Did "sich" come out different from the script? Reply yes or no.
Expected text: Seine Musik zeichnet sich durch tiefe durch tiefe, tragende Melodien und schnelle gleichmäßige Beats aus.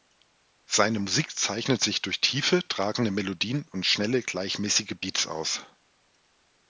no